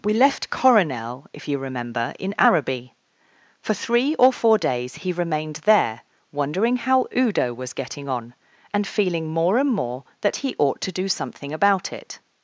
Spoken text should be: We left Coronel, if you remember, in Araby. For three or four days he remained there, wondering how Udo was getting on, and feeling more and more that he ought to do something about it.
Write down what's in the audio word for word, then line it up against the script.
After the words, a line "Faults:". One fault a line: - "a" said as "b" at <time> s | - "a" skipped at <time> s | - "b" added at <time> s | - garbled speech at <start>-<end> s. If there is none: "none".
We left Coronel, if you remember, in Araby. For three or four days he remained there, wondering how Udo was getting on, and feeling more and more that he ought to do something about it.
Faults:
none